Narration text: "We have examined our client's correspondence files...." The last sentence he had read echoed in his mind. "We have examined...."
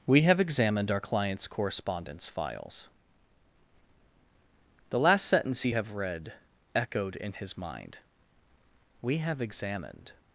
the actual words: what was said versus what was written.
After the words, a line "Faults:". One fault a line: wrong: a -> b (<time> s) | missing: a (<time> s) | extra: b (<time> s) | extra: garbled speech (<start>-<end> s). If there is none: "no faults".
"We have examined our client's correspondence files...." The last sentence he have read echoed in his mind. "We have examined...."
Faults:
wrong: had -> have (5.7 s)